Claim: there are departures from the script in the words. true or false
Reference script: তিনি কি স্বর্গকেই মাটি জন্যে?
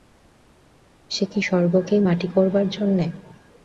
true